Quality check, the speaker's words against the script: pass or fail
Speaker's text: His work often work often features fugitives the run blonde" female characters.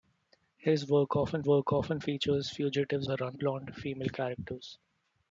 pass